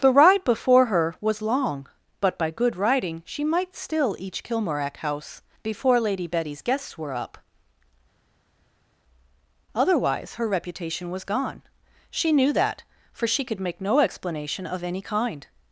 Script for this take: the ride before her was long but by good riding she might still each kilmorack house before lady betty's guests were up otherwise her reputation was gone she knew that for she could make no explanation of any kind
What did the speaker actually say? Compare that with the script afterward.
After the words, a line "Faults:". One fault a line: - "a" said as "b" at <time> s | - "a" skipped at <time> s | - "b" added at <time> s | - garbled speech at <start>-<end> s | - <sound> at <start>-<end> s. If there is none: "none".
the ride before her was long but by good riding she might still each kilmorack house before lady betty's guests were up otherwise her reputation was gone she knew that for she could make no explanation of any kind
Faults:
none